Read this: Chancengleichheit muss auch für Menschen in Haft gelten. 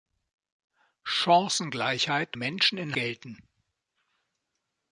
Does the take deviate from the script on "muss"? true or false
true